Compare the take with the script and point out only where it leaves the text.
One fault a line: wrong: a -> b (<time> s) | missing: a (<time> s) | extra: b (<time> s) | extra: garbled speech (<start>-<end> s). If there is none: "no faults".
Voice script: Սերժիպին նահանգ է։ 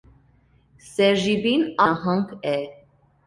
no faults